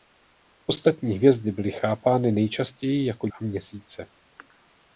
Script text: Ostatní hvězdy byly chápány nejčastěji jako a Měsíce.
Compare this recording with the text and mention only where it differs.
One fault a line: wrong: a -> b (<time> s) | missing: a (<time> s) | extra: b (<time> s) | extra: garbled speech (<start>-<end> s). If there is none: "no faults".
no faults